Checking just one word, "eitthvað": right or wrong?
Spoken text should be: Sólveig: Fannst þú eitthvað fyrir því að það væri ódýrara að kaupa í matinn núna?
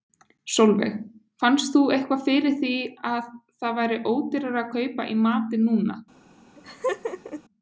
right